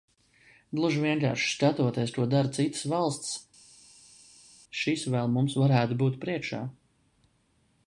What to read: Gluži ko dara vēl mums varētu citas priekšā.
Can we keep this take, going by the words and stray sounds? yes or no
no